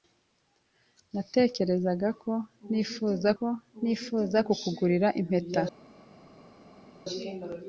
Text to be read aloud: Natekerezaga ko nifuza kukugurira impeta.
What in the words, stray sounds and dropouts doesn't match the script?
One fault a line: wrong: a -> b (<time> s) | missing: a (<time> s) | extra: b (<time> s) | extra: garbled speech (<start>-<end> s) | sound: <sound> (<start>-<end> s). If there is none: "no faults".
extra: ko nifuza (3.4 s)